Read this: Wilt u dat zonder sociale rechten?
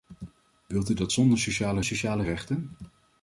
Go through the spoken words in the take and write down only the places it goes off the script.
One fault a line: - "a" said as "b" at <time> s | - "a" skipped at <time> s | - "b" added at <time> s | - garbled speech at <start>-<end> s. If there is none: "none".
- "sociale" added at 1.8 s